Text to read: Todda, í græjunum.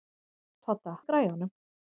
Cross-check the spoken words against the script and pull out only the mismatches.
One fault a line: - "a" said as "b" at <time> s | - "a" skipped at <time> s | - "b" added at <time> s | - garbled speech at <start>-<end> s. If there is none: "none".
none